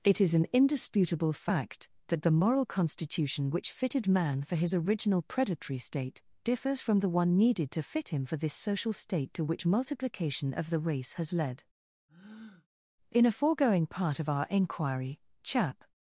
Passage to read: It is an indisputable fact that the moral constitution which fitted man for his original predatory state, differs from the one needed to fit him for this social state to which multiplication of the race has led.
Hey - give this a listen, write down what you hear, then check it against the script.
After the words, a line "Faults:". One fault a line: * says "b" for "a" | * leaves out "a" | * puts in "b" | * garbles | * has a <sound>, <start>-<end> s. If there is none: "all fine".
It is an indisputable fact that the moral constitution which fitted man for his original predatory state, differs from the one needed to fit him for this social state to which multiplication of the race has led. In a foregoing part of our inquiry (Chap
Faults:
* has a breath, 12.1-12.7 s
* puts in "In a foregoing part of our inquiry Chap"